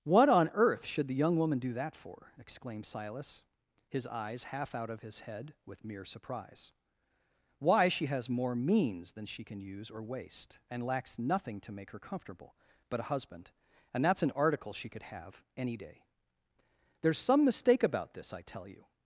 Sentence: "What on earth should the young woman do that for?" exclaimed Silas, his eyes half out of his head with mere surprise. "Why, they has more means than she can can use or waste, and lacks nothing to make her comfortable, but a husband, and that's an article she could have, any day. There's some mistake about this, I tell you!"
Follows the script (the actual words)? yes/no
no